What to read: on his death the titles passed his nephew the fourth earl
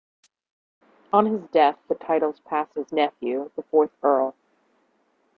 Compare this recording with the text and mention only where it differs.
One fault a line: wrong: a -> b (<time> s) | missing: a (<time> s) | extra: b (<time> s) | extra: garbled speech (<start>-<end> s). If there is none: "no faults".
no faults